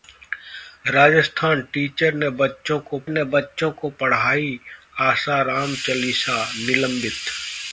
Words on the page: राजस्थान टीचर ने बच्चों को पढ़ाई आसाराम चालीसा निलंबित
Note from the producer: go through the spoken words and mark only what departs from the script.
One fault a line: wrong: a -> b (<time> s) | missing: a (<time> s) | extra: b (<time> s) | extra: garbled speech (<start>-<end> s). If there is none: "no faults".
extra: ने बच्चों को (3.1 s)